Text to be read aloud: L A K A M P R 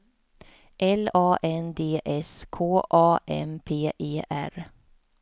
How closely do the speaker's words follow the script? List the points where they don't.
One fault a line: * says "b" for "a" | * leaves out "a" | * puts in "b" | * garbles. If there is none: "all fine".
* puts in "N D S"
* puts in "E"